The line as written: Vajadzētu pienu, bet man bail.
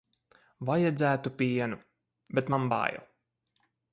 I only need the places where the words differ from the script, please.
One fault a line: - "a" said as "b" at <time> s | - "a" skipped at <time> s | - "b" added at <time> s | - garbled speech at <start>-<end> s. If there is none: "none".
none